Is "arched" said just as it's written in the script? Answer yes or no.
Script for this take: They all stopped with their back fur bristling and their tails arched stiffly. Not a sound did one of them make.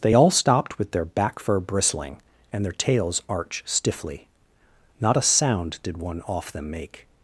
no